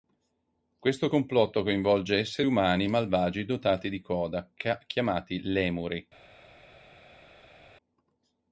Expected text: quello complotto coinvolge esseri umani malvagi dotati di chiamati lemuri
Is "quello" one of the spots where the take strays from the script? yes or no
yes